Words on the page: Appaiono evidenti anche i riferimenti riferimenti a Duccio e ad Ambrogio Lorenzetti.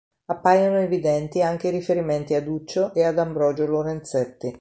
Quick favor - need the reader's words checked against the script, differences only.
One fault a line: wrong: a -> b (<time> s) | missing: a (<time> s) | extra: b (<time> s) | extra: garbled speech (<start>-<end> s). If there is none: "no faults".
missing: riferimenti (2.3 s)